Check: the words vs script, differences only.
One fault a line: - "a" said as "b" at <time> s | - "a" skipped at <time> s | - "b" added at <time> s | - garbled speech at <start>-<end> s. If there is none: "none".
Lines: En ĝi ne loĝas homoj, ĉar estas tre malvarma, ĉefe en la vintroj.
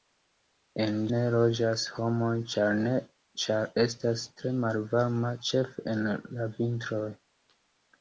- "ĝi" skipped at 0.9 s